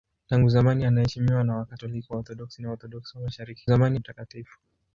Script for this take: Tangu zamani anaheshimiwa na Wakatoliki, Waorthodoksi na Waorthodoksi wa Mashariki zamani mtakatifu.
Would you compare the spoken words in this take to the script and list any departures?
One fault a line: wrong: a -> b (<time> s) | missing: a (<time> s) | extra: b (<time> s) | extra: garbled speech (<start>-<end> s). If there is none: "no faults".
no faults